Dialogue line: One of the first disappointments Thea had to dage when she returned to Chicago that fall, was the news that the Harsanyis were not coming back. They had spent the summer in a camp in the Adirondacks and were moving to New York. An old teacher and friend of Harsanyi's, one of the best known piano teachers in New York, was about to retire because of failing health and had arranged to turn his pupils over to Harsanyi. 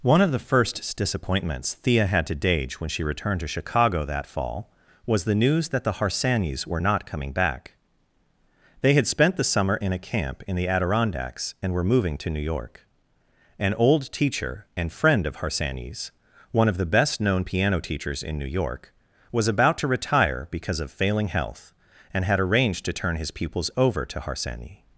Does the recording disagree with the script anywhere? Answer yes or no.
no